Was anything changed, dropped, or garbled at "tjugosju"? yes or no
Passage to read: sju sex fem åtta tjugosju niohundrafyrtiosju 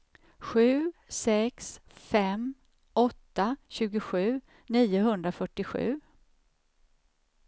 no